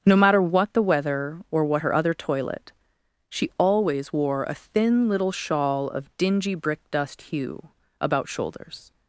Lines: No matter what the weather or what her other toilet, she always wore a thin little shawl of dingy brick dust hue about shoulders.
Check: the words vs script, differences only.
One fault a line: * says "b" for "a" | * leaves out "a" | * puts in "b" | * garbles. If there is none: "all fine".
all fine